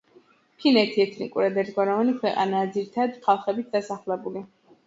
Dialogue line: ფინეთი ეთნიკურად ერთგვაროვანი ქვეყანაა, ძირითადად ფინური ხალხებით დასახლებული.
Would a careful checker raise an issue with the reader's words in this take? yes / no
yes